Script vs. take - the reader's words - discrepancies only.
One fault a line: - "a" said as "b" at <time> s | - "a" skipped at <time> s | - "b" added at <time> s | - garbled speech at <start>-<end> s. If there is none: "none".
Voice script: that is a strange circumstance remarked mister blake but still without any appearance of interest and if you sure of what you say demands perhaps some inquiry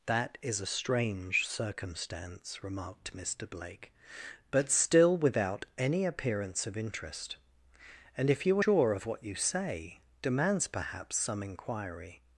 none